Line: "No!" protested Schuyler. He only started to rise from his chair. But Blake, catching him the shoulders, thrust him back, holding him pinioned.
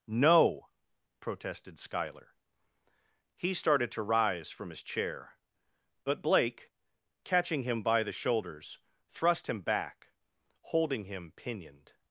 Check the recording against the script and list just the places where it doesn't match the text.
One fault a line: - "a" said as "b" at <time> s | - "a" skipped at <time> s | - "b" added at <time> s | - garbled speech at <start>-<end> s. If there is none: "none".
- "only" skipped at 3.5 s
- "by" added at 7.8 s